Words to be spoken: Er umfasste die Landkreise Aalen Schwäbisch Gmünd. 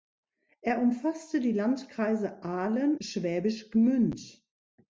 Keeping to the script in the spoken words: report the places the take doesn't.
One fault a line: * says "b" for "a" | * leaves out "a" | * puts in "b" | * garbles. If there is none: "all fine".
all fine